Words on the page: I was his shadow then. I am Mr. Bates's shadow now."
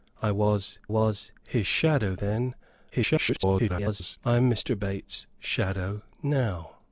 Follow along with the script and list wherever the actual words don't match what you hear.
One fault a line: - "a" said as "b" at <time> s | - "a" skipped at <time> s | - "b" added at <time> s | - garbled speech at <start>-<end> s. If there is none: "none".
- "was" added at 0.9 s
- garbled speech at 2.9-4.2 s